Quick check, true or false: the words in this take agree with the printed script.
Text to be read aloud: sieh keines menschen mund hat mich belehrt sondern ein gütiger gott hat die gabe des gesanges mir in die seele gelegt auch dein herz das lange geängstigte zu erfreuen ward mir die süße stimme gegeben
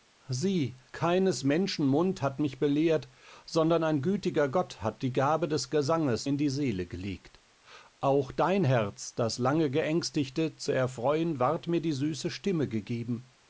false